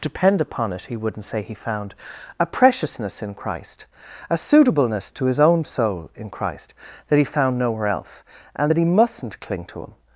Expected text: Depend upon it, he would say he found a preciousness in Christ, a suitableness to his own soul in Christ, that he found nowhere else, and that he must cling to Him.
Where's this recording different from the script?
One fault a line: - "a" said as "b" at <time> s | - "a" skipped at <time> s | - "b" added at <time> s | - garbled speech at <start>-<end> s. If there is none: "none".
- "would" said as "wouldn't" at 1.0 s
- "must" said as "mustn't" at 8.8 s